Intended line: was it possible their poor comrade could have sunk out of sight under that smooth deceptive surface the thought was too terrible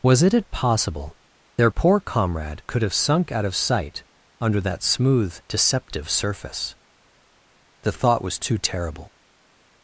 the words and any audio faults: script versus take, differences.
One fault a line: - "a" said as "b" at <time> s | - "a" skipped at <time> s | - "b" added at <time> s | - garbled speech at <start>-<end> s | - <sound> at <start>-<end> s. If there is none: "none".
- "it" added at 0.3 s